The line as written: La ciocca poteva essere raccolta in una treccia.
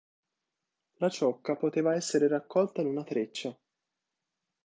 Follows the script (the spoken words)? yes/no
yes